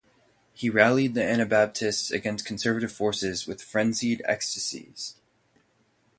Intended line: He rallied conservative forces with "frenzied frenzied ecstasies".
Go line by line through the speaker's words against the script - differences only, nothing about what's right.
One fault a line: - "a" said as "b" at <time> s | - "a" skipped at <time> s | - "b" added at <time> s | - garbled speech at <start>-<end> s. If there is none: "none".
- "the Anabaptists against" added at 1.1 s
- "frenzied" skipped at 4.2 s